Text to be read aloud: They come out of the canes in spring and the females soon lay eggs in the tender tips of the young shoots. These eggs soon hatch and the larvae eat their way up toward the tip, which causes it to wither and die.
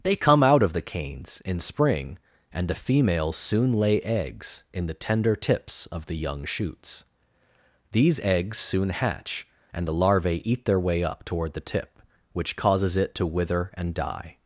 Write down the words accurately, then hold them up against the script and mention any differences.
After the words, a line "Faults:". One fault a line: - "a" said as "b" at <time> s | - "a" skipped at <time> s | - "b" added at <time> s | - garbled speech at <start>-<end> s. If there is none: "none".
They come out of the canes in spring and the females soon lay eggs in the tender tips of the young shoots. These eggs soon hatch and the larvae eat their way up toward the tip, which causes it to wither and die.
Faults:
none